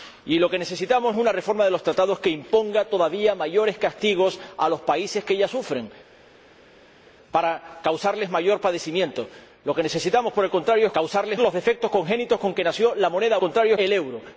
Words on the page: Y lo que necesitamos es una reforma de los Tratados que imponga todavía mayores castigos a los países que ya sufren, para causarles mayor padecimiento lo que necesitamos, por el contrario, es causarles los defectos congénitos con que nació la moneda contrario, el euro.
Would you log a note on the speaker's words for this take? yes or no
no